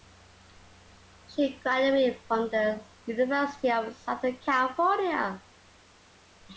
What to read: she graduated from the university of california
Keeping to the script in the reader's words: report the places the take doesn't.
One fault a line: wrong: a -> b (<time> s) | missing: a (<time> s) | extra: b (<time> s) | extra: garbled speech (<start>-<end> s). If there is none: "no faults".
extra: southern (4.0 s)